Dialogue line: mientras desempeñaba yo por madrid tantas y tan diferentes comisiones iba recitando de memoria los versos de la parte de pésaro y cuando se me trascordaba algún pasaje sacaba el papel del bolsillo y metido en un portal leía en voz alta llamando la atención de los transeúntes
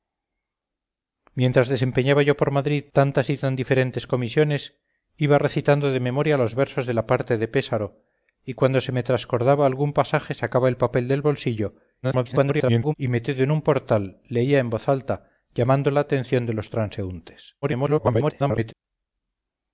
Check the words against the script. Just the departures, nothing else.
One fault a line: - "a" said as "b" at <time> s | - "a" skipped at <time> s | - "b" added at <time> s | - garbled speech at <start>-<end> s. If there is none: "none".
- garbled speech at 12.0-12.9 s
- garbled speech at 17.6-18.7 s